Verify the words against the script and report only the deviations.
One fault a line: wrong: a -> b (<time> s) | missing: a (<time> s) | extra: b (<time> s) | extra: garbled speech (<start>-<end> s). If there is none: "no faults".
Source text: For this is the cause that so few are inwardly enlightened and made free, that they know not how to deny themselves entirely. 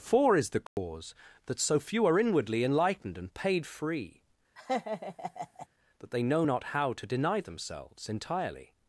missing: this (0.4 s)
wrong: made -> paid (3.3 s)